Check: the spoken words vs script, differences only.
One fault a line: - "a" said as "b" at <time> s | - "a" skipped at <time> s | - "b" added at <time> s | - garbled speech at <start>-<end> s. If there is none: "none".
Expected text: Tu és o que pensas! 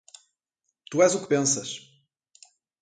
none